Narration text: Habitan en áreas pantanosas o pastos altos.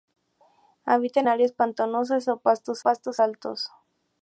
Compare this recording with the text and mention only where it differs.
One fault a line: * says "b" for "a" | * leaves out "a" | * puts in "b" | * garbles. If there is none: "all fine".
* leaves out "en"
* puts in "pastos"